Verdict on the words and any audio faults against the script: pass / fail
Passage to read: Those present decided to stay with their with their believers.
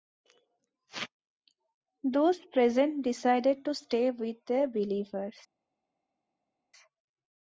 fail